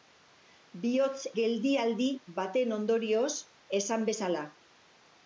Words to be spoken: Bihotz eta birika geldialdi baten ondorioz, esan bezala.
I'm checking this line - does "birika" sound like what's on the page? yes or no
no